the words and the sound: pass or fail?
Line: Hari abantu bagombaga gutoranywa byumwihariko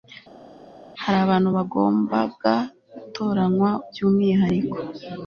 pass